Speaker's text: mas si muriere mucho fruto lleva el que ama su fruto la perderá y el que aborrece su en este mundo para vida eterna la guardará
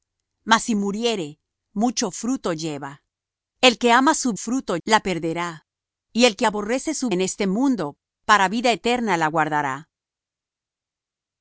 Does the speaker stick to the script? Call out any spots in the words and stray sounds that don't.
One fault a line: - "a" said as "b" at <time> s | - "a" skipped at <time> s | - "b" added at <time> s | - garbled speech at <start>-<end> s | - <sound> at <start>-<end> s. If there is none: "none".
none